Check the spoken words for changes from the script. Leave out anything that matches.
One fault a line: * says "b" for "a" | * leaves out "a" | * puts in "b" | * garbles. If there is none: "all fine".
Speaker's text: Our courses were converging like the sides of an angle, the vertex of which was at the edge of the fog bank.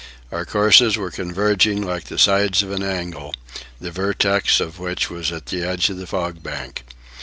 all fine